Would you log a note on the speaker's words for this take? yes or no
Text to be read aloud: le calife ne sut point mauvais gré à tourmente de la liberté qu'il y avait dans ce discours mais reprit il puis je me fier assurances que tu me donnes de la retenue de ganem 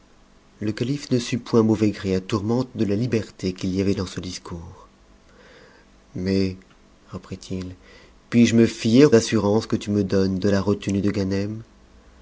no